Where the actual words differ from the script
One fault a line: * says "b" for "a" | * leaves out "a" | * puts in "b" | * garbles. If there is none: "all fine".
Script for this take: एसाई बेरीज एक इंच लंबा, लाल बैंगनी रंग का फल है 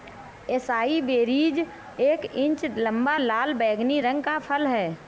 all fine